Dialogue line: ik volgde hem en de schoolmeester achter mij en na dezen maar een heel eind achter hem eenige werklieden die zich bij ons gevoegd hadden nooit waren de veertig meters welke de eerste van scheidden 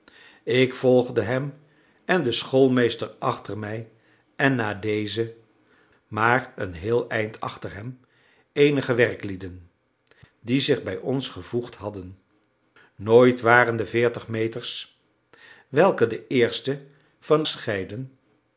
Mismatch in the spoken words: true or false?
false